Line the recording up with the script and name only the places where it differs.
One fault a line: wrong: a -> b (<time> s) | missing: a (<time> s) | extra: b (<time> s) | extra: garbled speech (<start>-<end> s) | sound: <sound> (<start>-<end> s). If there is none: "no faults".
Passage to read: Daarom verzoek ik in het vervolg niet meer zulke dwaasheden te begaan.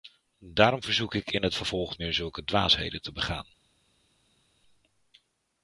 missing: niet (1.9 s)